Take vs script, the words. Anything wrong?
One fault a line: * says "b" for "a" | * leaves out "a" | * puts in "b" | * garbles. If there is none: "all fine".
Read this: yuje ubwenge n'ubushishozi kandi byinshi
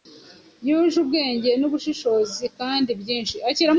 all fine